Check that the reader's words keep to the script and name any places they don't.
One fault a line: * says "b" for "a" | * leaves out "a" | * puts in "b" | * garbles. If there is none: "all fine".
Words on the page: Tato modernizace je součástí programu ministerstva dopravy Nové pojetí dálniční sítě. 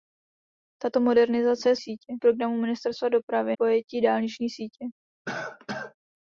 * says "sítě" for "součástí"
* leaves out "Nové"